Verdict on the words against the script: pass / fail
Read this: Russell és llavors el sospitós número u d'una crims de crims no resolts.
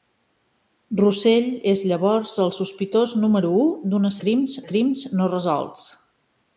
pass